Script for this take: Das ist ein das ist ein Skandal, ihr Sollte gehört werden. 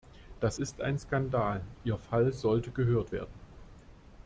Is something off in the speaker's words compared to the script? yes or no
yes